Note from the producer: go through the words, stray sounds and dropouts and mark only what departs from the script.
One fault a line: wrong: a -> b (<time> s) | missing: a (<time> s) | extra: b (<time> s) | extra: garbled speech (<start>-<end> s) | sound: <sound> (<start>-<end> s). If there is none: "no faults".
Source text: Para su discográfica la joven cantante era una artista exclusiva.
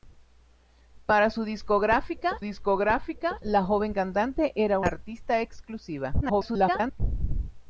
extra: discográfica (2.4 s)
missing: una (4.8 s)
extra: garbled speech (6.2-7.0 s)